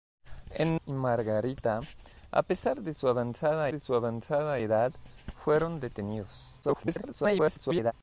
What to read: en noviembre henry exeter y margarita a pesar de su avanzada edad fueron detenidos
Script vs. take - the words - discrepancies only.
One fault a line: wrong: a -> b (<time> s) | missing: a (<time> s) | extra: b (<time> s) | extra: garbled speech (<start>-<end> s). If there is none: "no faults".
missing: noviembre henry exeter (0.8 s)
extra: de su avanzada (3.7 s)
extra: garbled speech (6.6-7.9 s)